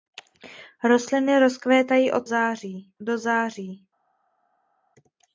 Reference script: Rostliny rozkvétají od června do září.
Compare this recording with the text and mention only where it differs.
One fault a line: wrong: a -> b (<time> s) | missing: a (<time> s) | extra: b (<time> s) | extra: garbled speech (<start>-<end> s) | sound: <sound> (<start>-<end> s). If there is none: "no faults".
wrong: června -> září (2.2 s)